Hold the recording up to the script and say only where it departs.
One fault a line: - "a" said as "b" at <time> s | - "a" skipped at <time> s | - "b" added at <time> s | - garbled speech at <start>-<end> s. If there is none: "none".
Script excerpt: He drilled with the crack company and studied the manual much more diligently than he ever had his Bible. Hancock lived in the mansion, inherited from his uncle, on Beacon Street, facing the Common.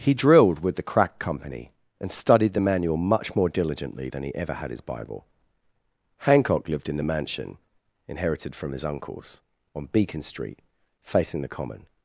- "uncle" said as "uncles" at 8.8 s